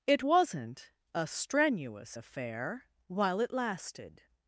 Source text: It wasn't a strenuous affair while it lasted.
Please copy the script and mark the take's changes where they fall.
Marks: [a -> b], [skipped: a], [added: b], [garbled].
It wasn't a strenuous affair while it lasted.